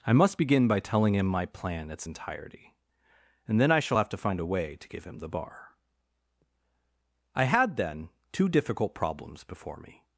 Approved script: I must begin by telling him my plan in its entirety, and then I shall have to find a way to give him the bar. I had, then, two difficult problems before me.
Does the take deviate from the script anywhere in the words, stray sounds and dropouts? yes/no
yes